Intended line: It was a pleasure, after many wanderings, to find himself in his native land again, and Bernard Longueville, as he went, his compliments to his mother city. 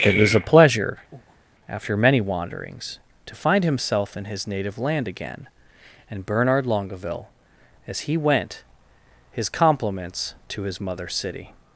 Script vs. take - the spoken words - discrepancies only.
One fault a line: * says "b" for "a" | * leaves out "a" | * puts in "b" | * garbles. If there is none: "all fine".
all fine